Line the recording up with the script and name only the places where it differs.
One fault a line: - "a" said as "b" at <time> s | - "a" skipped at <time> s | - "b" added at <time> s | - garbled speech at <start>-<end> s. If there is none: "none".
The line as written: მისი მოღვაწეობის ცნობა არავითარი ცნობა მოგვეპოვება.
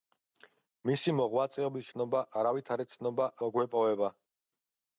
none